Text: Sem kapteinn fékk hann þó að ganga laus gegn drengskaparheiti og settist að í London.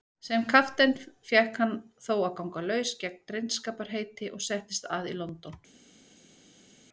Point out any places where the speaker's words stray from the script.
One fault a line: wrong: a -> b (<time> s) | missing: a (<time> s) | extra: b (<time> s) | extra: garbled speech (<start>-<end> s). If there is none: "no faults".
no faults